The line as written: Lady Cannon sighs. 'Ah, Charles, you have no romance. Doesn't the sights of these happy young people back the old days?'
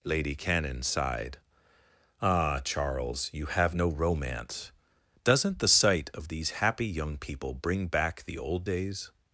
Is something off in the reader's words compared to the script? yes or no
yes